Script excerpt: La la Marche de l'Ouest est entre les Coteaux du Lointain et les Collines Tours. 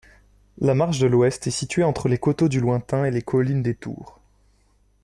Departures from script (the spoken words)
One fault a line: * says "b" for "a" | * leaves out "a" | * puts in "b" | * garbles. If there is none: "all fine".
* leaves out "la"
* puts in "située"
* puts in "des"